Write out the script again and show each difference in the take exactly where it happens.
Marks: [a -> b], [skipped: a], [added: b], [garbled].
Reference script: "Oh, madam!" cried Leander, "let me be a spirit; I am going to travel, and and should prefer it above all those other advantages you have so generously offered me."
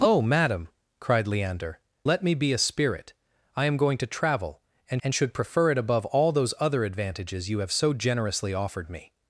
"Oh, madam!" cried Leander, "let me be a spirit; I am going to travel, and and should prefer it above all those other advantages you have so generously offered me."